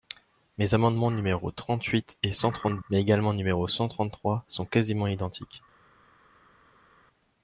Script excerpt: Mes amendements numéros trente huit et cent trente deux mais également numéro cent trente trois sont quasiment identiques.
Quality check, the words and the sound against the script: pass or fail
fail